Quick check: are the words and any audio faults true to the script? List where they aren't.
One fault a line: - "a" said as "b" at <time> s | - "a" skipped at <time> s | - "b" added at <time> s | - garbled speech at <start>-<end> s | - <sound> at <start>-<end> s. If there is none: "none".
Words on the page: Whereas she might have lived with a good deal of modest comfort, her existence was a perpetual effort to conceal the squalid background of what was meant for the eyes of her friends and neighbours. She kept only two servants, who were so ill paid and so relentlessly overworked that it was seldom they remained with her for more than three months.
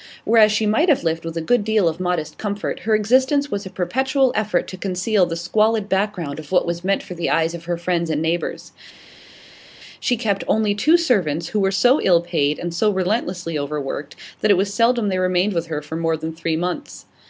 none